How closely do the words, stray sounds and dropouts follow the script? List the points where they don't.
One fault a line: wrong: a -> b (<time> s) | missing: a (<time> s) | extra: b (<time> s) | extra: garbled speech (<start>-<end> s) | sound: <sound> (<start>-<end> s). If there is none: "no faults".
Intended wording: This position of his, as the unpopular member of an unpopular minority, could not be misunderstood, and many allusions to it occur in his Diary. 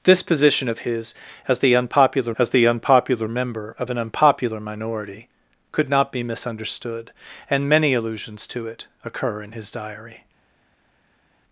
extra: as the unpopular (2.4 s)